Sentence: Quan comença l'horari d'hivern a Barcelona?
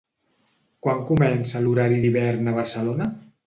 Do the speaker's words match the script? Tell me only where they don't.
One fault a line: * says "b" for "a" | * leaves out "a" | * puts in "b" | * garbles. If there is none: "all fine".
all fine